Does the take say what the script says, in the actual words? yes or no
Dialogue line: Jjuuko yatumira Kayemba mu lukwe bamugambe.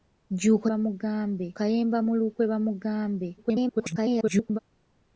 no